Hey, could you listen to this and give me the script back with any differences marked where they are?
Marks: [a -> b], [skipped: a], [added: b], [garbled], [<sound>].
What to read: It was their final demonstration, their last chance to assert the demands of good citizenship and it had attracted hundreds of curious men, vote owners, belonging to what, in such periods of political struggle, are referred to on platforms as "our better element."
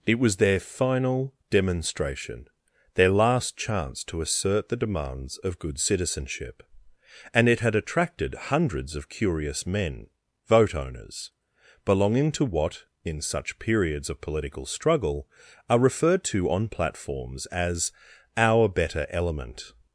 It was their final demonstration, their last chance to assert the demands of good citizenship and it had attracted hundreds of curious men, vote owners, belonging to what, in such periods of political struggle, are referred to on platforms as "our better element."